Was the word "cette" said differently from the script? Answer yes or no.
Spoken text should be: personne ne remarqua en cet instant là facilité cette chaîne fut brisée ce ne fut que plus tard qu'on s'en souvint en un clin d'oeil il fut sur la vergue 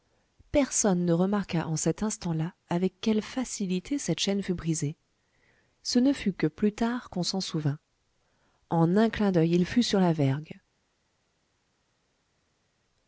no